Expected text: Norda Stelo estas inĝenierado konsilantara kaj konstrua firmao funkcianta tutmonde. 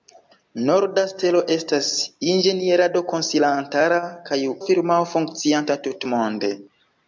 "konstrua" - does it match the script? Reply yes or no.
no